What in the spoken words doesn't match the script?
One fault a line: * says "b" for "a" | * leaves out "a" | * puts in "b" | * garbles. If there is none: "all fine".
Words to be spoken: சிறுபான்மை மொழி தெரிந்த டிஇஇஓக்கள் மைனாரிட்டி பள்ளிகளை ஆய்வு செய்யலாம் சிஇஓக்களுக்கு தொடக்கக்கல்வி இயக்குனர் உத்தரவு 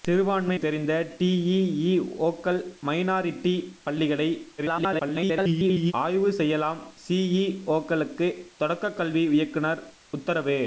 * leaves out "மொழி"
* garbles